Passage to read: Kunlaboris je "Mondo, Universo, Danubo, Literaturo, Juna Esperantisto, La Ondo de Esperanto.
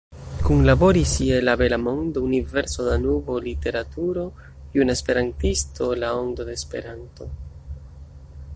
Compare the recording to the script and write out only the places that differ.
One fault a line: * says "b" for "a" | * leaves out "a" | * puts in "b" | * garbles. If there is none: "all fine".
* puts in "La Bela"